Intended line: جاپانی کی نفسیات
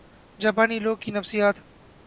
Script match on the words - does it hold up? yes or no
no